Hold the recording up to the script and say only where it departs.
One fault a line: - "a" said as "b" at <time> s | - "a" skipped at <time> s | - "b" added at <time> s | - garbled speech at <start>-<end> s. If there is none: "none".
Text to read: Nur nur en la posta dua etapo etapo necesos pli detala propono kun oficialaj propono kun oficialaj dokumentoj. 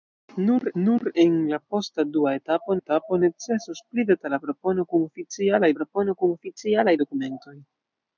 none